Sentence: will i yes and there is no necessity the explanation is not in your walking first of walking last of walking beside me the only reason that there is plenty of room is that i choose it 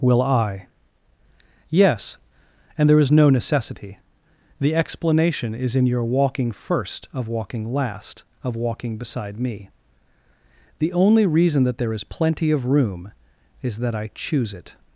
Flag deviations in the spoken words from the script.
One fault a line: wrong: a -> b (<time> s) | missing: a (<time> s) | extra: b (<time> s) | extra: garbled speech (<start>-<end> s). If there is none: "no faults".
missing: not (5.8 s)